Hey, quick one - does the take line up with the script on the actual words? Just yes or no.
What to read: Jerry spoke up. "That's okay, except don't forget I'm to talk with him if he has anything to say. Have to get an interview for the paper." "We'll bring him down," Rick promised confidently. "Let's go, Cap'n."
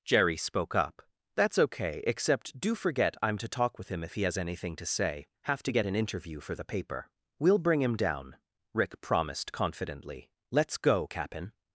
no